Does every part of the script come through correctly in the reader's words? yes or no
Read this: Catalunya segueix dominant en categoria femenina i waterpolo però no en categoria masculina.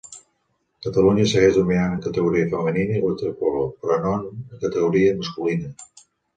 yes